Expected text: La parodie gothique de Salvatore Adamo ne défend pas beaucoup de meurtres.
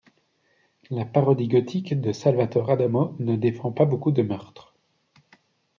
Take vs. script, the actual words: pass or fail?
pass